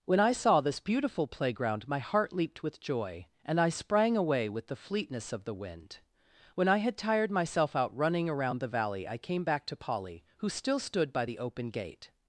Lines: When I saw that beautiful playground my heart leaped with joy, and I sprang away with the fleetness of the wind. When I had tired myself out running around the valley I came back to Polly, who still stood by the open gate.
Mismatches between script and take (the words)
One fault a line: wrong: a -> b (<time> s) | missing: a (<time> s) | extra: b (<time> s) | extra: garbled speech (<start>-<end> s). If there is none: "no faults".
wrong: that -> this (0.6 s)